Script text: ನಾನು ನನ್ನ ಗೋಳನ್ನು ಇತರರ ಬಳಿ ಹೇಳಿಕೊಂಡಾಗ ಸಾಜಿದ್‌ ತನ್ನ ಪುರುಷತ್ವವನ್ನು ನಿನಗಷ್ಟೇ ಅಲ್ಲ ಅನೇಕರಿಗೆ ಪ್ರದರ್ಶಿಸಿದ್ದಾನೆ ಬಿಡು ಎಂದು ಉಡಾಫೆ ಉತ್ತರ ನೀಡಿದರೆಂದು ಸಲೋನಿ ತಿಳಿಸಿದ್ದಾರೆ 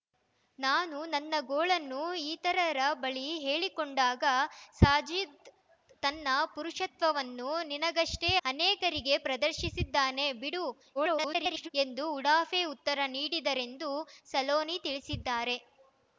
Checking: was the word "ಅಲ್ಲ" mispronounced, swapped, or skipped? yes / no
yes